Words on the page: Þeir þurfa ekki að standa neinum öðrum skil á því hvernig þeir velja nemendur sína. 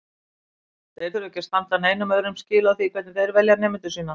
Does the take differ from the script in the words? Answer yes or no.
no